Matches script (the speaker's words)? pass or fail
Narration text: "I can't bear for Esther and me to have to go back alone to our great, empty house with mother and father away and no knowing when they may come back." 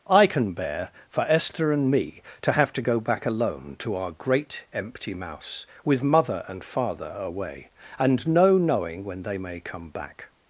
fail